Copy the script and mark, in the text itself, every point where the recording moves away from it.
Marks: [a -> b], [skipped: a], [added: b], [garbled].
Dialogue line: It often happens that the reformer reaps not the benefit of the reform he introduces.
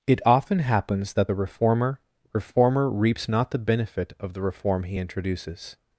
It often happens that the reformer [added: reformer] reaps not the benefit of the reform he introduces.